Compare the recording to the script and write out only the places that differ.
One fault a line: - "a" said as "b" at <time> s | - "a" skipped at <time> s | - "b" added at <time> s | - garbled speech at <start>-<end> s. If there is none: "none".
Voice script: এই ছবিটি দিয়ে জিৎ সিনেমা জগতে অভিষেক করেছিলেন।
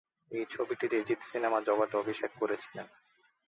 none